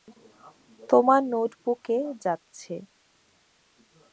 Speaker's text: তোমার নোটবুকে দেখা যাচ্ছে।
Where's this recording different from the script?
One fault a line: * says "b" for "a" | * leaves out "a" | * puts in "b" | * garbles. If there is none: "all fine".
* leaves out "দেখা"